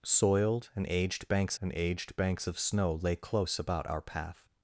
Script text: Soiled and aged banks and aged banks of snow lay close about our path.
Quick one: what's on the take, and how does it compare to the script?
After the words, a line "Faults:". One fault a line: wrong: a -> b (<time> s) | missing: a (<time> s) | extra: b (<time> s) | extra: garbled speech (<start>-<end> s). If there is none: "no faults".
Soiled and aged banks and aged banks of snow lay close about our path.
Faults:
no faults